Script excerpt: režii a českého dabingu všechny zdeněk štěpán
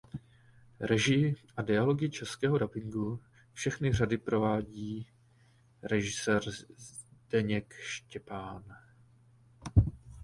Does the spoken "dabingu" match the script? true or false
true